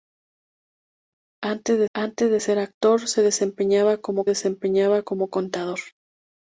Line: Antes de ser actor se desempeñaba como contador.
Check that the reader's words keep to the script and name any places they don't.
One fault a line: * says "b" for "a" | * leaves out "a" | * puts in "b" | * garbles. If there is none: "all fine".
* puts in "antes de"
* puts in "desempeñaba como"